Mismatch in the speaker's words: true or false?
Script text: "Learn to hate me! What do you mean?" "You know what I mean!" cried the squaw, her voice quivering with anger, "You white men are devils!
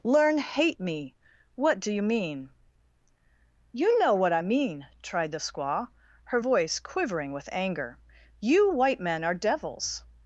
true